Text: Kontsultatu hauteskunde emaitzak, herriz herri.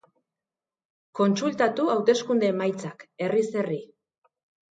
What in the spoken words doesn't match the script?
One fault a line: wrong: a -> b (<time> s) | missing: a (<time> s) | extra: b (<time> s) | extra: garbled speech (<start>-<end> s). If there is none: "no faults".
no faults